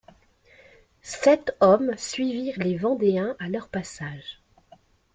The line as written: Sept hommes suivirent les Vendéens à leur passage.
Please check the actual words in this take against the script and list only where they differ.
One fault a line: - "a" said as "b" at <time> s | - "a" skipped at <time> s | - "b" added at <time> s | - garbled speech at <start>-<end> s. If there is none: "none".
none